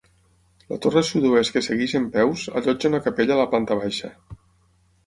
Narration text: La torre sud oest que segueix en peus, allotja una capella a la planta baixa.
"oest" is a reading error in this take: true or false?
false